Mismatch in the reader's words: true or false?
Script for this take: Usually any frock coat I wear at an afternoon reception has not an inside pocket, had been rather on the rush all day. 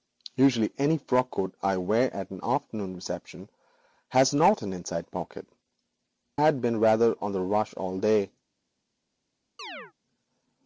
false